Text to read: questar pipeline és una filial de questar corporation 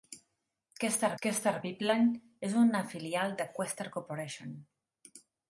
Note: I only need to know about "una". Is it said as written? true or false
true